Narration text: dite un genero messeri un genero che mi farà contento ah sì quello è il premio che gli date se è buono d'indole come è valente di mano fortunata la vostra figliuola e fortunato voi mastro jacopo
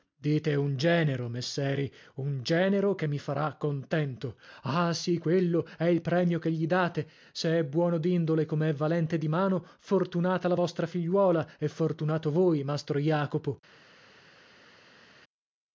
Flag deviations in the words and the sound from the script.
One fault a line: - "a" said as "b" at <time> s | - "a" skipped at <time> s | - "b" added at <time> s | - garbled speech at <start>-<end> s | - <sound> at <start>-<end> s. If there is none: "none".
none